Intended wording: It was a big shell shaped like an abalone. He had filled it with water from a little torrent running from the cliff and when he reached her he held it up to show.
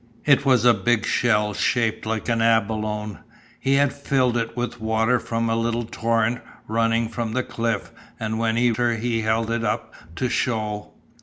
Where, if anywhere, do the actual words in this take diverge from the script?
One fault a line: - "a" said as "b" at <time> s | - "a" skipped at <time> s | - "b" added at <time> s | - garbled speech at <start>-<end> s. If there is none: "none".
- "reached" skipped at 8.7 s